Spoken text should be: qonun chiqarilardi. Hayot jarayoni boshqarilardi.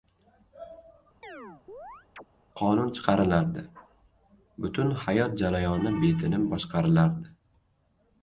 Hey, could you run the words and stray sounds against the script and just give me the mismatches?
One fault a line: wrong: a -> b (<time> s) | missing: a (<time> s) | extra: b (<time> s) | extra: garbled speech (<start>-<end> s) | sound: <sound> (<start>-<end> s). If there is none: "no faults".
sound: chirp (1.2-2.2 s)
extra: Butun (4.7 s)
extra: betinim (6.0 s)